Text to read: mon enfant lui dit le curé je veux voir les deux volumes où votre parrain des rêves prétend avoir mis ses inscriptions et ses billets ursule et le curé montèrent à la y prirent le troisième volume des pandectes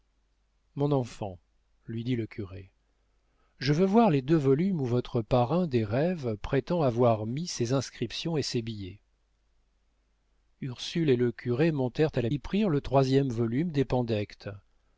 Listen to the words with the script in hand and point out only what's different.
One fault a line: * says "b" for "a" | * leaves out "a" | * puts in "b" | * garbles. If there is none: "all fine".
all fine